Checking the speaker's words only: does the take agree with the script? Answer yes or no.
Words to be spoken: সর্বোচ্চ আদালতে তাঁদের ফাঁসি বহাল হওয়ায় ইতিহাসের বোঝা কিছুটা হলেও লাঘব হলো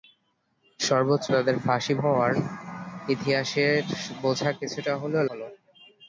no